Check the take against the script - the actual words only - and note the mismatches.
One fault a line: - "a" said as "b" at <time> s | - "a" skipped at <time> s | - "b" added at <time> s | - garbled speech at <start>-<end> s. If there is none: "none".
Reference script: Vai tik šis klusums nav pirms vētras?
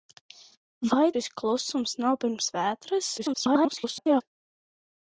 - "tik" skipped at 1.1 s
- garbled speech at 3.2-4.2 s